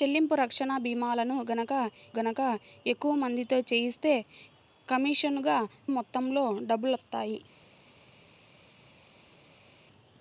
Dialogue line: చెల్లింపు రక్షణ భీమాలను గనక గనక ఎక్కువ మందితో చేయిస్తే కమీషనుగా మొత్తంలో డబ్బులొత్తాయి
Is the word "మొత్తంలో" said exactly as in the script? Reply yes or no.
yes